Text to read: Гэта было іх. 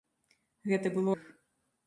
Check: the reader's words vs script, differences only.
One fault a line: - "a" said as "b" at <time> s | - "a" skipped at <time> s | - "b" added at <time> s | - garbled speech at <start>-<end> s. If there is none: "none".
none